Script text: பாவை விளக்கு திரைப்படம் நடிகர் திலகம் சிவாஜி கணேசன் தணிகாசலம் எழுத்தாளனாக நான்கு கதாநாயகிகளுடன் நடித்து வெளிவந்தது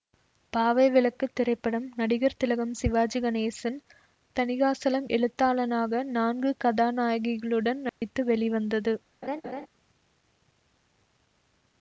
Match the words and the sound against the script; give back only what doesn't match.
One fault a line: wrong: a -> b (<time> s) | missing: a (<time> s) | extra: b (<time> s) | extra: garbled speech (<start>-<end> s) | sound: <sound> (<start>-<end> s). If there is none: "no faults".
sound: dropout (7.9-8.0 s)
sound: laugh (9.2-9.7 s)